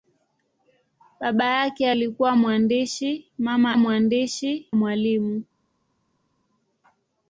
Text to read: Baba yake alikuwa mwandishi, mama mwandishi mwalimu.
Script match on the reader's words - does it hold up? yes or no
yes